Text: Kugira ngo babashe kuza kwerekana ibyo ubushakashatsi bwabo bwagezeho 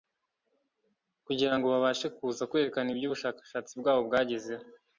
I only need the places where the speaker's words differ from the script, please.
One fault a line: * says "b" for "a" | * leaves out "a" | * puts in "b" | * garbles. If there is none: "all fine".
all fine